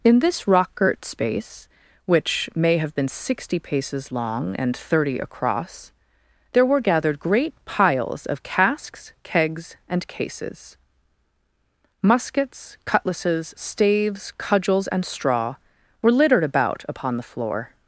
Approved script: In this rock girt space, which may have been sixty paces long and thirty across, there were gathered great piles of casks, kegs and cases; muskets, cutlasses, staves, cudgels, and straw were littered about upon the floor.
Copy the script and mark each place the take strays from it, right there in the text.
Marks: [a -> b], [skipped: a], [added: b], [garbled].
In this rock girt space, which may have been sixty paces long and thirty across, there were gathered great piles of casks, kegs and cases; muskets, cutlasses, staves, cudgels, and straw were littered about upon the floor.